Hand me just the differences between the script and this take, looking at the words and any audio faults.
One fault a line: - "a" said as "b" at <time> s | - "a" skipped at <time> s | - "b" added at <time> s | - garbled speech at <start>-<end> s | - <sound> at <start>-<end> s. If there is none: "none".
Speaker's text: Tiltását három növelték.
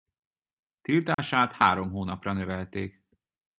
- dropout at 1.1-1.2 s
- "hónapra" added at 1.9 s